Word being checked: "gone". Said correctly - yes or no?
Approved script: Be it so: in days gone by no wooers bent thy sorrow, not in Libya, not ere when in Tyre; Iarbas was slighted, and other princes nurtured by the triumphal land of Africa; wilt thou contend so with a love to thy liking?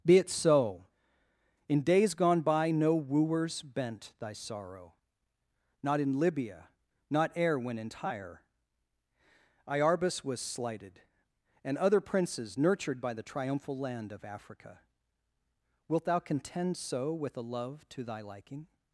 yes